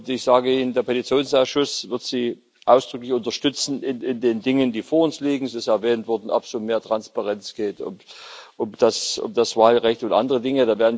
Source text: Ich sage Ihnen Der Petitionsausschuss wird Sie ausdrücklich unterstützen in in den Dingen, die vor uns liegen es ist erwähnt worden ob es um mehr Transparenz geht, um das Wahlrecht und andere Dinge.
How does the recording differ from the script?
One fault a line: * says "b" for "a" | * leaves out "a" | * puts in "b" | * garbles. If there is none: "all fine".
all fine